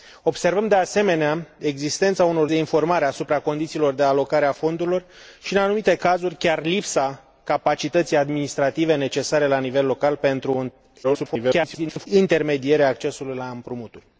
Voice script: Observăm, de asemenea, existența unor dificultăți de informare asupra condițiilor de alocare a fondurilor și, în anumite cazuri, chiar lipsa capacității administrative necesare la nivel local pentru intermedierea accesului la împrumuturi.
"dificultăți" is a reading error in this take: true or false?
true